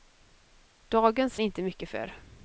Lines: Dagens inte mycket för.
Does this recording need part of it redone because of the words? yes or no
no